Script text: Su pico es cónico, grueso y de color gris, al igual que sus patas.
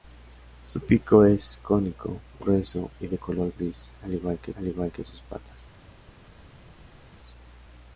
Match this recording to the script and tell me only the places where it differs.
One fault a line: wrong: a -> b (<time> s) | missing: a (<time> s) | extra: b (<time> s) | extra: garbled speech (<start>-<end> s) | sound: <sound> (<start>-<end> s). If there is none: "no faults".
extra: al igual que (4.5 s)